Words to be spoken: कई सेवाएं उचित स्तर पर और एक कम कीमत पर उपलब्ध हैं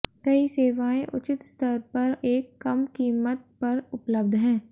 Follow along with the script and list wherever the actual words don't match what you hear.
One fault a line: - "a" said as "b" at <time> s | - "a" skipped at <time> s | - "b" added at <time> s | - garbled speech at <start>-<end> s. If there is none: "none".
- "और" skipped at 2.1 s